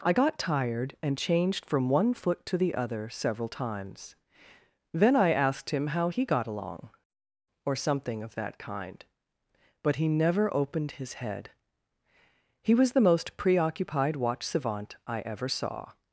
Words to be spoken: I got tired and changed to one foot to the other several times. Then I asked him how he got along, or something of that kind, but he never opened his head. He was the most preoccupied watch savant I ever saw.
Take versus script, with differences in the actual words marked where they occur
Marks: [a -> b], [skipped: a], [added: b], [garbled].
I got tired and changed [to -> from] one foot to the other several times. Then I asked him how he got along, or something of that kind, but he never opened his head. He was the most preoccupied watch savant I ever saw.